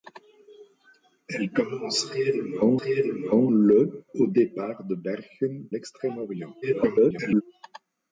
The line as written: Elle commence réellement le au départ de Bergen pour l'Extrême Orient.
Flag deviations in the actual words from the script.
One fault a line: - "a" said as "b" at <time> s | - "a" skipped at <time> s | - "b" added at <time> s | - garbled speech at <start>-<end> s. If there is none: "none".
- "réellement" added at 2.8 s
- "pour" skipped at 5.7 s
- garbled speech at 6.6-7.4 s